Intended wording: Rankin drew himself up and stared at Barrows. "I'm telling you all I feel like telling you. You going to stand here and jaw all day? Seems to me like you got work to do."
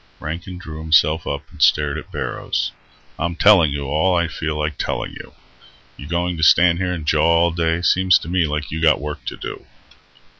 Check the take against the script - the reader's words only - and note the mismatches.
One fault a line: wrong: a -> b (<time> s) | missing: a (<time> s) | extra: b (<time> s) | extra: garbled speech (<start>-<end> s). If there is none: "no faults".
no faults